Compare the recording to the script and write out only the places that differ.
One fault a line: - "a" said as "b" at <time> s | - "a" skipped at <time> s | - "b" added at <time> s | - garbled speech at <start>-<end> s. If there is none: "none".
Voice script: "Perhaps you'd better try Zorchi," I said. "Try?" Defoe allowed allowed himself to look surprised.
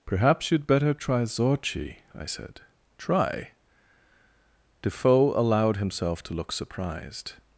- "allowed" skipped at 5.8 s